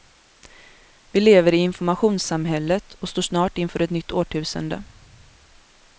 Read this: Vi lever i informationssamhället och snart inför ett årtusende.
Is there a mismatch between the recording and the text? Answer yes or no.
yes